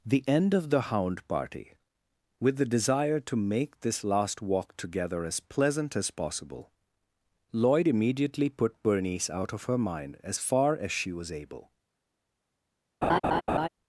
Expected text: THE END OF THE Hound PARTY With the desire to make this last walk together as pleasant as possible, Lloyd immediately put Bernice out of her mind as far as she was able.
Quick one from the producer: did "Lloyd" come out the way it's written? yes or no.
yes